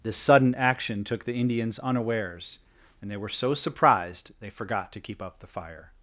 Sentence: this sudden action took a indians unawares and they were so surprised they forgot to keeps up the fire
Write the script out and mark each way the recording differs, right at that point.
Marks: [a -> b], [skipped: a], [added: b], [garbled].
this sudden action took [a -> the] indians unawares and they were so surprised they forgot to [keeps -> keep] up the fire